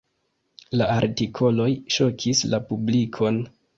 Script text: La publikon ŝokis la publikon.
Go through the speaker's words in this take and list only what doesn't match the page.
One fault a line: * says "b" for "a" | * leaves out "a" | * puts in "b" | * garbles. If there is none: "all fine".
* says "artikoloj" for "publikon"